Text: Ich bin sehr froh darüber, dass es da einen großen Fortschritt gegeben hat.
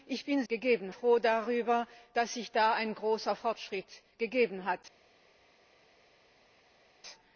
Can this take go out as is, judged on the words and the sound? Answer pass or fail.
fail